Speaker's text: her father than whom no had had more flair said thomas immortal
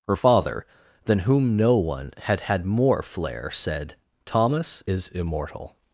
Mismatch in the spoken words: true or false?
true